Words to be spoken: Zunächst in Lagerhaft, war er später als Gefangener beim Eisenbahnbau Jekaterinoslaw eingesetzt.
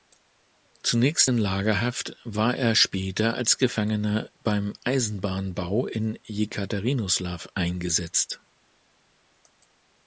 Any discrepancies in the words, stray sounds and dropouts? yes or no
yes